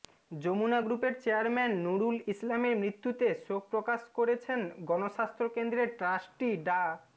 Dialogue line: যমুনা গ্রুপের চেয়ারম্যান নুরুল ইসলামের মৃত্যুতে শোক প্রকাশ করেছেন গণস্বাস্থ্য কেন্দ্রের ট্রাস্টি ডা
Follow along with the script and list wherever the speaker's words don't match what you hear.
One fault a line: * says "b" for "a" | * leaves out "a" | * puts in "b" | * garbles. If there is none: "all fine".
all fine